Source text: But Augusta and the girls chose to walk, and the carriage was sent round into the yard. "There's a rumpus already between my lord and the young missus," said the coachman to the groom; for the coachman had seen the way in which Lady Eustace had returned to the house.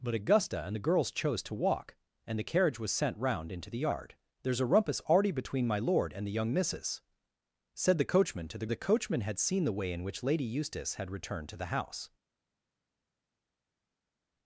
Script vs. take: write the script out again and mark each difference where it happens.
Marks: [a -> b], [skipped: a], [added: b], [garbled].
But Augusta and the girls chose to walk, and the carriage was sent round into the yard. "There's a rumpus already between my lord and the young missus," said the coachman to the [skipped: groom; for] the coachman had seen the way in which Lady Eustace had returned to the house.